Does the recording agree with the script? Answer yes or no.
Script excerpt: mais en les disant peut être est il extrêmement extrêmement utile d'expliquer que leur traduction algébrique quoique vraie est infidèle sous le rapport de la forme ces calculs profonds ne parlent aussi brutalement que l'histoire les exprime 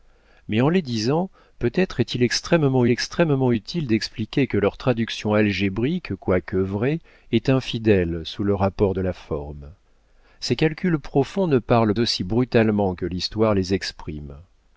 yes